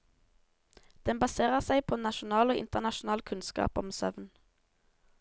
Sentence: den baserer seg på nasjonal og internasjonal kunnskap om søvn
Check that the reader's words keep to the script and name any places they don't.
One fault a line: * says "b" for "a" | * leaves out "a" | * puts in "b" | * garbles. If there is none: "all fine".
all fine